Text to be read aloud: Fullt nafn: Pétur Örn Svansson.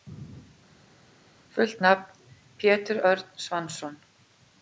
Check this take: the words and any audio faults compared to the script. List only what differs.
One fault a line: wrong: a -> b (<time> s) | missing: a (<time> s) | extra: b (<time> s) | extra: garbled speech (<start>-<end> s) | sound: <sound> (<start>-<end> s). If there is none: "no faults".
no faults